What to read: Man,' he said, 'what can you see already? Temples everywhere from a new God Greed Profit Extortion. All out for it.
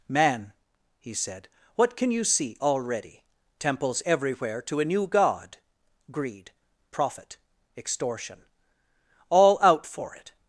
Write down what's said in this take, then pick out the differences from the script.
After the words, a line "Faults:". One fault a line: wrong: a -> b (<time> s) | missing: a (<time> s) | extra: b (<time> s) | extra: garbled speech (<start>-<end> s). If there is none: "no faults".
Man,' he said, 'what can you see already? Temples everywhere to a new God Greed Profit Extortion. All out for it.
Faults:
wrong: from -> to (4.6 s)